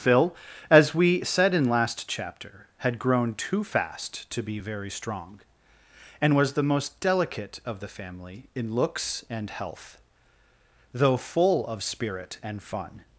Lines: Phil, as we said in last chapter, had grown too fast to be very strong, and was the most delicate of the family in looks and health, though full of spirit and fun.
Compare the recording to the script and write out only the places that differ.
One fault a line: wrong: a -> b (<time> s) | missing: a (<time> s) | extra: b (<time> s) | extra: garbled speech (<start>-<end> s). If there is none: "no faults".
no faults